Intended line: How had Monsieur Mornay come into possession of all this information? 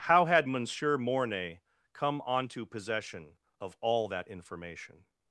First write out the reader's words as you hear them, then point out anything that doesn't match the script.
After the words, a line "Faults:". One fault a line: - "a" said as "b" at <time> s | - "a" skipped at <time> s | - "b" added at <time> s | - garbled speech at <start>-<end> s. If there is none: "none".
How had Monsieur Mornay come onto possession of all that information?
Faults:
- "into" said as "onto" at 2.2 s
- "this" said as "that" at 4.1 s